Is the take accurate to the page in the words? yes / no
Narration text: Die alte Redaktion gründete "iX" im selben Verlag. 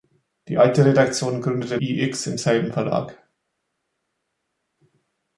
yes